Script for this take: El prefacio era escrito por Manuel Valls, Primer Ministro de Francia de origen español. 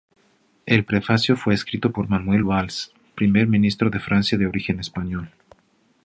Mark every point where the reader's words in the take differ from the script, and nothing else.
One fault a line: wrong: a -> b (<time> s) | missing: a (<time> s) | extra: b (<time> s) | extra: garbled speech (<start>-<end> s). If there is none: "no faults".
wrong: era -> fue (1.4 s)